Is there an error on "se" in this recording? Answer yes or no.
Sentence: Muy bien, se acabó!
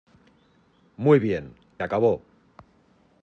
yes